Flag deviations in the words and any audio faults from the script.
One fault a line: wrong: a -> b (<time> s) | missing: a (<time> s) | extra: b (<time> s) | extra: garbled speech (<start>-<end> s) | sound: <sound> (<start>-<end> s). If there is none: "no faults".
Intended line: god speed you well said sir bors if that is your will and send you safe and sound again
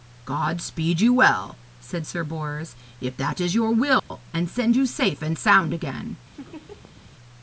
sound: dropout (4.0-4.1 s)
sound: laugh (6.3-7.1 s)